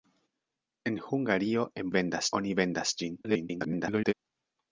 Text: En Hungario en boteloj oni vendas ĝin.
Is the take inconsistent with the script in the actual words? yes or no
yes